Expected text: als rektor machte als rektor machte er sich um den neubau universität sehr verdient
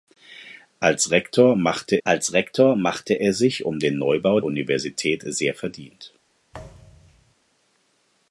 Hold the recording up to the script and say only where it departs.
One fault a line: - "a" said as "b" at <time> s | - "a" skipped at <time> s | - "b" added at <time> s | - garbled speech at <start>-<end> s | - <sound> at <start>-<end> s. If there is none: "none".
- thud at 6.5-7.3 s